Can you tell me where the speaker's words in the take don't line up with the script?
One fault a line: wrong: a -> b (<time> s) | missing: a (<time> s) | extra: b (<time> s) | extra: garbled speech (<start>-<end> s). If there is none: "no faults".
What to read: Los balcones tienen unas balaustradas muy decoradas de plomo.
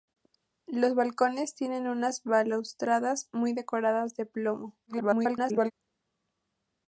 extra: garbled speech (4.9-5.7 s)